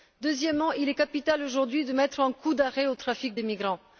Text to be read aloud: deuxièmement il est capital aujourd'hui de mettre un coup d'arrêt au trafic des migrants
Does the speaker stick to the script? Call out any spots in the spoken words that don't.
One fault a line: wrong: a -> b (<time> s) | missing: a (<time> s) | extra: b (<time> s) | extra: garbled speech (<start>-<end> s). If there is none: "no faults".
no faults